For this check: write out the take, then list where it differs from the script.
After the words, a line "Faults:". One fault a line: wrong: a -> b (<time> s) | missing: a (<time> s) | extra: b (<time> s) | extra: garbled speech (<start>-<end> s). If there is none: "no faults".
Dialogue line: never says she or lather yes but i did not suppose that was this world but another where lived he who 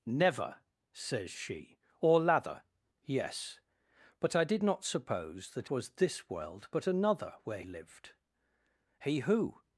never says she or lather yes but i did not suppose that was this world but another where lived he who
Faults:
no faults